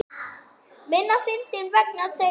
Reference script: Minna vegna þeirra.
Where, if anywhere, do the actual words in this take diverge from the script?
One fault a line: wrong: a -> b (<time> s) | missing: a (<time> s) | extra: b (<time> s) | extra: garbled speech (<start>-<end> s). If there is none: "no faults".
extra: fyndinn (1.3 s)